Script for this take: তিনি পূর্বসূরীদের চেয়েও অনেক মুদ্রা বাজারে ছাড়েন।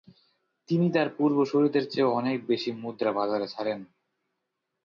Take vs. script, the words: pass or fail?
fail